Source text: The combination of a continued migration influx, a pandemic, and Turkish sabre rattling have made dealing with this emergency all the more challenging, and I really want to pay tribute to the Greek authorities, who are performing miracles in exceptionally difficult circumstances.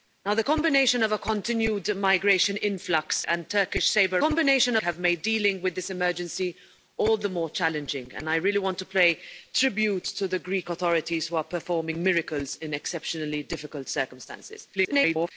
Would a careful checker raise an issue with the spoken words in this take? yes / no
yes